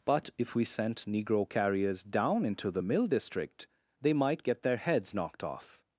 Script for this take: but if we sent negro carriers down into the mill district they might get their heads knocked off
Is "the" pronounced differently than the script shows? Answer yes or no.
no